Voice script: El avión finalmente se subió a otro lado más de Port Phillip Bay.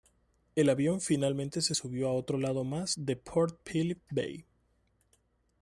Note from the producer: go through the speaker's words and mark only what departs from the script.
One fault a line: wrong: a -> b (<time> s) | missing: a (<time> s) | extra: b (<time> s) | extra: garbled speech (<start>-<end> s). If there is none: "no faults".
no faults